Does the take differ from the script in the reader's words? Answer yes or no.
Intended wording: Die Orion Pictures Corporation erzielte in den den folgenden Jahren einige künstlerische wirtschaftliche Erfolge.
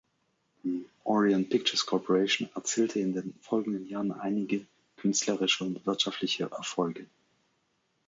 yes